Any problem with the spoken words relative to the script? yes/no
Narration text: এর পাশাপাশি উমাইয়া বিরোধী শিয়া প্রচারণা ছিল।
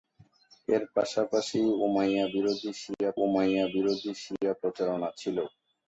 yes